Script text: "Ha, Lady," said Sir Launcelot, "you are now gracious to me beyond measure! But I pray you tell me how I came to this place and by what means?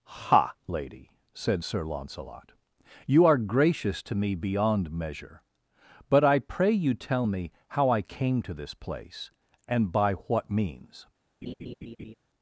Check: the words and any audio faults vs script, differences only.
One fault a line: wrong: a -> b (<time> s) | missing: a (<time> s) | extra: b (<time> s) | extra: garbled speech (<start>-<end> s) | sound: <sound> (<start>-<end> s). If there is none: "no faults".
missing: now (3.4 s)
sound: laugh (11.4-12.1 s)